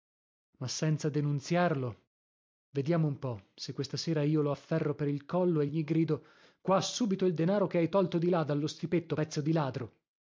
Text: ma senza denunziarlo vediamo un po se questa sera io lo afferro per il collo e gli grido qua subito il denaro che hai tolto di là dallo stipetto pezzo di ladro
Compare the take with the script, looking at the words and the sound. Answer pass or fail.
pass